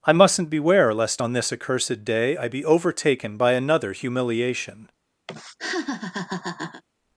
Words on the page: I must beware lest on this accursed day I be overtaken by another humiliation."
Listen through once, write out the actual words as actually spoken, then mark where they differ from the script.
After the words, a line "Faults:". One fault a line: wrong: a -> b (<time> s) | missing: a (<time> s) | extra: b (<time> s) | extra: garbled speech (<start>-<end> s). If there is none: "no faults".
I mustn't beware lest on this accursed day I be overtaken by another humiliation."
Faults:
wrong: must -> mustn't (0.1 s)